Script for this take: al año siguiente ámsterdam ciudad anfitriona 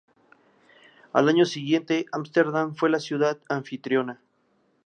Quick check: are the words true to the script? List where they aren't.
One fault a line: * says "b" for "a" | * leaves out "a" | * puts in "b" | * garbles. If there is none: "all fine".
* puts in "fue la"